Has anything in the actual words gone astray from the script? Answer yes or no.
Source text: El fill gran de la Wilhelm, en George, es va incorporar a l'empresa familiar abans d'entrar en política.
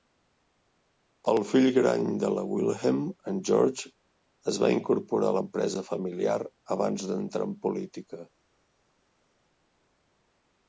no